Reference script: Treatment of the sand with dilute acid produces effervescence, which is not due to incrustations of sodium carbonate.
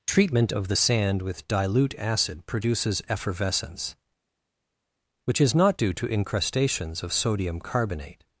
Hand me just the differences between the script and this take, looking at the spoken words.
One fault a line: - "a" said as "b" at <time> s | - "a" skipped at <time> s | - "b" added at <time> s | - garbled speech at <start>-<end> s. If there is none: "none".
none